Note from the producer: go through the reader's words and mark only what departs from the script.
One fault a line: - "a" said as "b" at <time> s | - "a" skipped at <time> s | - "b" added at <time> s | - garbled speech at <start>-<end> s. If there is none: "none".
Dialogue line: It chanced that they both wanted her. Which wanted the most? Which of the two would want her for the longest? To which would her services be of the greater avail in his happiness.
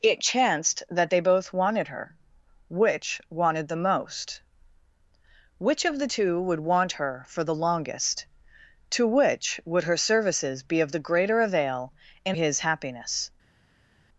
none